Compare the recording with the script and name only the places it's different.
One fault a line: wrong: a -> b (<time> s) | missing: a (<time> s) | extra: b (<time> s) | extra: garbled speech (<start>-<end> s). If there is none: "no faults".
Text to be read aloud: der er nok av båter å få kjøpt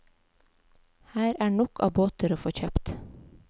wrong: der -> her (1.1 s)